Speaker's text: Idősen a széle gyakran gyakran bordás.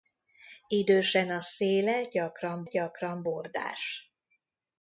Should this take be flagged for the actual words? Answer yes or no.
no